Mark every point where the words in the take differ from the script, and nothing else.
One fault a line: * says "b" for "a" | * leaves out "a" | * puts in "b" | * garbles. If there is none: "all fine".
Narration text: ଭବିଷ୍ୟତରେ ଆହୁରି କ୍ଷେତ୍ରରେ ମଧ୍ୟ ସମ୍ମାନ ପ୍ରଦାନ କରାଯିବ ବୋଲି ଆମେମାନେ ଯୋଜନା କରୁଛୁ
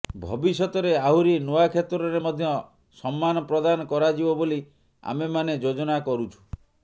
* puts in "ନୂଆ"